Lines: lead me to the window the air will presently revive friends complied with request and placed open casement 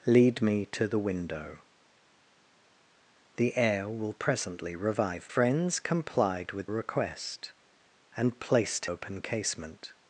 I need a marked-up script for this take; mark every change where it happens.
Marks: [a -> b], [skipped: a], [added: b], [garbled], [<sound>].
lead me to the window the air will presently revive friends complied with request and placed open casement